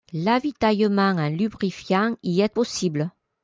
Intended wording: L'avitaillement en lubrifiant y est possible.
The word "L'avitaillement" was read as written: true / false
true